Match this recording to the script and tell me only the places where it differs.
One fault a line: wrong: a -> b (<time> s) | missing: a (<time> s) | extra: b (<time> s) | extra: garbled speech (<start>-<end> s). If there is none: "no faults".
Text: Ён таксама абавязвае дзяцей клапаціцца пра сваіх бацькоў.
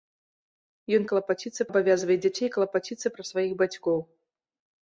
wrong: таксама -> клапаціцца (1.1 s)